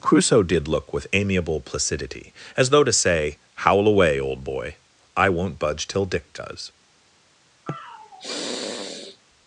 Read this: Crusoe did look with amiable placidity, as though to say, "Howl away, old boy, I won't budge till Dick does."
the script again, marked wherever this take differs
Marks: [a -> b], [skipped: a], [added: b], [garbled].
Crusoe did look with amiable placidity, as though to say, "Howl away, old boy, I won't budge till Dick does."